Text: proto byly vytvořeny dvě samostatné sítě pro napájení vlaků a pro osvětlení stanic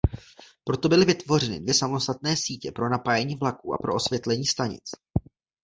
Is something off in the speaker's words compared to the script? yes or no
no